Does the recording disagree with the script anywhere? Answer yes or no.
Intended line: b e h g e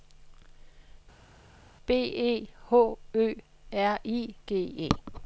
yes